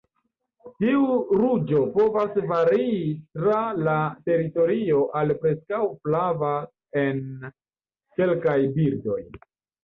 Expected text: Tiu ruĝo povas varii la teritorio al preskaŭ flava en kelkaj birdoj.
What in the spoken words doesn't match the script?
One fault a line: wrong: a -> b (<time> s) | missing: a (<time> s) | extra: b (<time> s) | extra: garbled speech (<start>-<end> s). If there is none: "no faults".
extra: tra (3.4 s)